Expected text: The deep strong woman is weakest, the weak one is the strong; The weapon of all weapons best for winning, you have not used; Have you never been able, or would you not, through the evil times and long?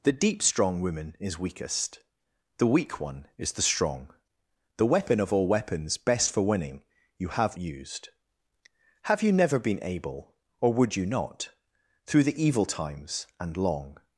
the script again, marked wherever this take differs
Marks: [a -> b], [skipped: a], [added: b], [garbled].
The deep strong woman is weakest, the weak one is the strong; The weapon of all weapons best for winning, you have [skipped: not] used; Have you never been able, or would you not, through the evil times and long?